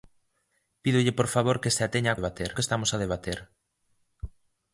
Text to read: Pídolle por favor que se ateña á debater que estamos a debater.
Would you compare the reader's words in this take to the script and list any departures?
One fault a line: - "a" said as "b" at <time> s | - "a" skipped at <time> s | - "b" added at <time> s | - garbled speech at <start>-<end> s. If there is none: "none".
none